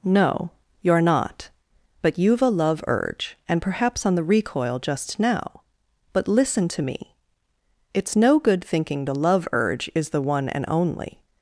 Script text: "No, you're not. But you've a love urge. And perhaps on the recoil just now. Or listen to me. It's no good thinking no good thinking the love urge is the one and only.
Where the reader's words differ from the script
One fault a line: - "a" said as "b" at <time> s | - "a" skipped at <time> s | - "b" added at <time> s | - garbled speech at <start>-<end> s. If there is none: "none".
- "Or" said as "But" at 6.1 s
- "no good thinking" skipped at 9.1 s